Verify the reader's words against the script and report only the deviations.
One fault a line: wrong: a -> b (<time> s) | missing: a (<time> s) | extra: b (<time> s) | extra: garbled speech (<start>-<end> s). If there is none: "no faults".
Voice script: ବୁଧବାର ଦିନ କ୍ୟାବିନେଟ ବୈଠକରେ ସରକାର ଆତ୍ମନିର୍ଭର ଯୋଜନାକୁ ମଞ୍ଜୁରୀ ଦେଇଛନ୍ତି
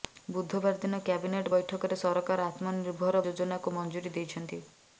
no faults